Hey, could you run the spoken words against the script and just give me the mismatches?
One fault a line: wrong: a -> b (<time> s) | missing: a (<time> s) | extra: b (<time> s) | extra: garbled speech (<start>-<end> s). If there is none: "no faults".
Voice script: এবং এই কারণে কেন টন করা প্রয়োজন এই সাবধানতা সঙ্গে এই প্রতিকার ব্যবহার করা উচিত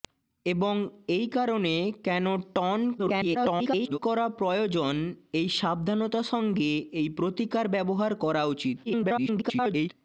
extra: garbled speech (3.0-4.0 s)
extra: garbled speech (8.9-9.9 s)